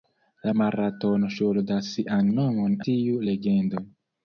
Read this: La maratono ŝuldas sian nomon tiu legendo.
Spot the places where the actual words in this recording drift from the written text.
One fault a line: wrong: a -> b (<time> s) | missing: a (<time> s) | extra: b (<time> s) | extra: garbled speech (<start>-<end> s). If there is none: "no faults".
no faults